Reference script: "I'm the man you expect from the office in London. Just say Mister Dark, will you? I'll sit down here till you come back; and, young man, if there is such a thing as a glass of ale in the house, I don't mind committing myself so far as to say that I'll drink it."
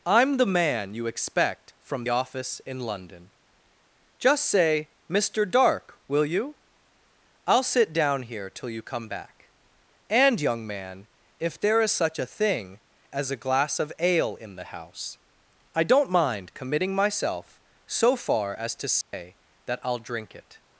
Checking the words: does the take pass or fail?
fail